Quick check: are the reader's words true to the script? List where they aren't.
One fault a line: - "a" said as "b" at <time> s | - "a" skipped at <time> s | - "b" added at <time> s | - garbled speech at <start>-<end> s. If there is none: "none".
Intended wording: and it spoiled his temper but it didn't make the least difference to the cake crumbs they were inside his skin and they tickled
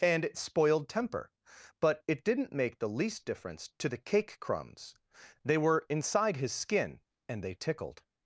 - "his" skipped at 0.9 s